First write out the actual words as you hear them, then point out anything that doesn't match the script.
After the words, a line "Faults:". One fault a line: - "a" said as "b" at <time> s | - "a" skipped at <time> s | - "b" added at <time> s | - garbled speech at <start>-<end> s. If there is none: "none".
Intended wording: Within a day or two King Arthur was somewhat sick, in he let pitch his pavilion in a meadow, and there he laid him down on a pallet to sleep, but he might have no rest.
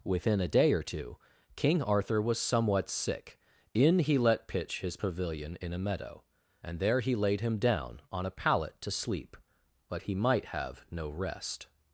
Within a day or two King Arthur was somewhat sick, in he let pitch his pavilion in a meadow, and there he laid him down on a pallet to sleep, but he might have no rest.
Faults:
none